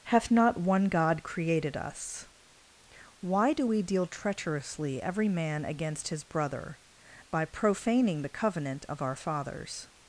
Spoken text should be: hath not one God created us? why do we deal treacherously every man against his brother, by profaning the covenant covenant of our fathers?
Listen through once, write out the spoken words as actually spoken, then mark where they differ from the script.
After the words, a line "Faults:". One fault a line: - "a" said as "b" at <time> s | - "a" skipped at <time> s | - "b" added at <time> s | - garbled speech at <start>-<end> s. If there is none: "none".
hath not one God created us? why do we deal treacherously every man against his brother, by profaning the covenant of our fathers?
Faults:
- "covenant" skipped at 8.9 s